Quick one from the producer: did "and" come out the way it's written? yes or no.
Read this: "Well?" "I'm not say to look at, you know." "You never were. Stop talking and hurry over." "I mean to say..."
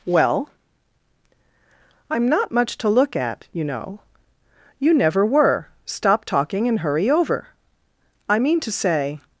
yes